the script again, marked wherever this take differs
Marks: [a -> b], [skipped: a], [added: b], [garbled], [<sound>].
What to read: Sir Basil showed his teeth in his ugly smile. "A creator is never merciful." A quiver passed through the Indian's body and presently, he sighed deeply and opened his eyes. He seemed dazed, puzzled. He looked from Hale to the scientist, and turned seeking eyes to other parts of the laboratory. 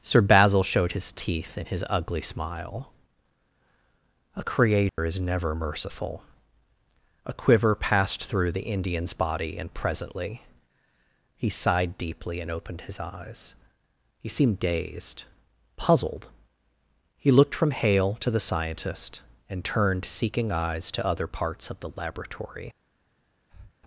Sir Basil showed his teeth in his ugly smile. "A creator [dropout] is never merciful." A quiver passed through the Indian's body and presently, he sighed deeply and opened his eyes. He seemed dazed, puzzled. He looked from Hale to the scientist, and turned seeking eyes to other parts of the laboratory. [breath]